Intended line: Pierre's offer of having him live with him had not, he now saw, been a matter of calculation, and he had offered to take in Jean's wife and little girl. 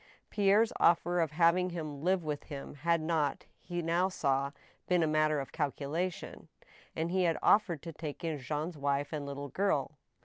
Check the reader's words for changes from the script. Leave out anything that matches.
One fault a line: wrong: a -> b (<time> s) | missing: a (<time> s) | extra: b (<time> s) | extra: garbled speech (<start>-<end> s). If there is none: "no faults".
no faults